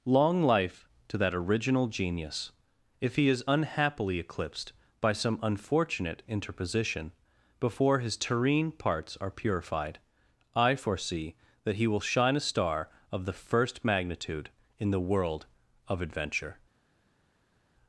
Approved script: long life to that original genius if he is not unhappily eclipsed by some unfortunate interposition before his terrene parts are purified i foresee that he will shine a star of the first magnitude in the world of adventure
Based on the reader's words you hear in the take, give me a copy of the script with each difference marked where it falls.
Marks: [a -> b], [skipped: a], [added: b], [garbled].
long life to that original genius if he is [skipped: not] unhappily eclipsed by some unfortunate interposition before his terrene parts are purified i foresee that he will shine a star of the first magnitude in the world of adventure